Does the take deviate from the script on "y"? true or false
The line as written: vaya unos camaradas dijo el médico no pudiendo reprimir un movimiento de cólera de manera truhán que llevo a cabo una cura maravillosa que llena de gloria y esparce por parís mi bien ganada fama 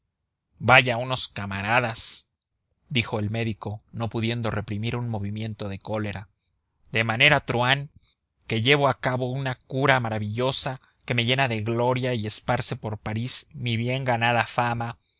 false